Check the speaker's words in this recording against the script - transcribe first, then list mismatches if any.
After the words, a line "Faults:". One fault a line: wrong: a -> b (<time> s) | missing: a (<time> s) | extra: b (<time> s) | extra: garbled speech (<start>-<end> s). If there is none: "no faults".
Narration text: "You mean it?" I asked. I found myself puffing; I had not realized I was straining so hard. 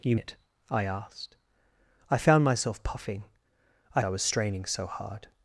"You it?" I asked. I found myself puffing; I I was straining so hard.
Faults:
missing: mean (0.1 s)
missing: had not realized (4.0 s)